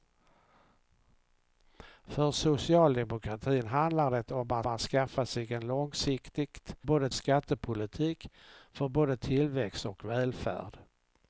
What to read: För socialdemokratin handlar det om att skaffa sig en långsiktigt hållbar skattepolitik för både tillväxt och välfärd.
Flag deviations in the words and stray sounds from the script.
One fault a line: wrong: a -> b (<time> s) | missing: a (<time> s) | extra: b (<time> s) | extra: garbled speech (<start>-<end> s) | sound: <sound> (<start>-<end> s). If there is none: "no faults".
extra: att (4.7 s)
wrong: hållbar -> både (6.8 s)